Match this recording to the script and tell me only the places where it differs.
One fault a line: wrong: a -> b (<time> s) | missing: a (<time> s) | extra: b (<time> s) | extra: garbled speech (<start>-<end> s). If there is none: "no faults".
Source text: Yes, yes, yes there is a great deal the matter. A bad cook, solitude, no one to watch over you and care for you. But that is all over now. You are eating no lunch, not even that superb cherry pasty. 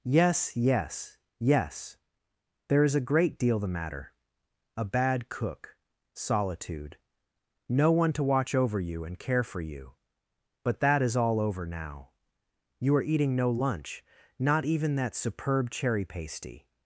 no faults